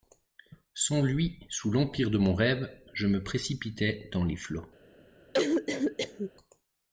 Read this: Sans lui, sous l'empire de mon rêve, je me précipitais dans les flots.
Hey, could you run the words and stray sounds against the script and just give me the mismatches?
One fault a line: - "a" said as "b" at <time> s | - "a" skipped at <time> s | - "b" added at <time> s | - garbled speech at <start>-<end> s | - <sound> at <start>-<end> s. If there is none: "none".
- cough at 5.3-6.3 s